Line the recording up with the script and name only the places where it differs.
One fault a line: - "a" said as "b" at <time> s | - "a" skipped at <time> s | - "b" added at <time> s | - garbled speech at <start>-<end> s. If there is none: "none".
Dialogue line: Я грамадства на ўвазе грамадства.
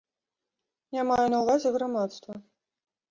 - "грамадства" said as "маю" at 1.1 s